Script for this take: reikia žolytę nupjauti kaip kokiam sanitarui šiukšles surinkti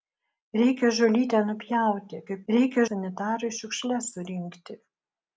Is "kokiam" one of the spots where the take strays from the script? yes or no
yes